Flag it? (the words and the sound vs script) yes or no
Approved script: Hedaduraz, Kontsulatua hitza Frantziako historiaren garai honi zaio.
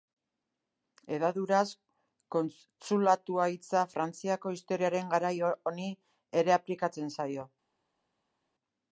yes